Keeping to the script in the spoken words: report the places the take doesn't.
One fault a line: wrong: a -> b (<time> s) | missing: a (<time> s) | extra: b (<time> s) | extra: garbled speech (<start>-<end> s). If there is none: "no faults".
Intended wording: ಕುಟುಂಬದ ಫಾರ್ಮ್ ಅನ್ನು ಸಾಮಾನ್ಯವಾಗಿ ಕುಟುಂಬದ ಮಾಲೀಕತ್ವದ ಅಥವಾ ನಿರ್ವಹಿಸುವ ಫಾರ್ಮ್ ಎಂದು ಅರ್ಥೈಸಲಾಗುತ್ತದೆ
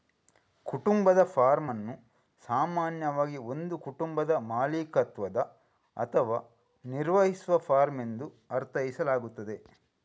extra: ಒಂದು (3.4 s)